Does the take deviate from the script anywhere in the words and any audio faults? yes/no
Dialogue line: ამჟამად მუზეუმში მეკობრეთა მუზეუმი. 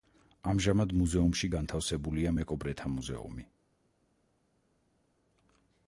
yes